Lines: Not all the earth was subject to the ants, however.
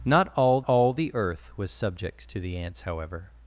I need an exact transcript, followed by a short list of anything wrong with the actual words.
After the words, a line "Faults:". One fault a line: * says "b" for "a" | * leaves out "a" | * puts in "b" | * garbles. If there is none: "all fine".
Not all all the earth was subject to the ants, however.
Faults:
* puts in "all"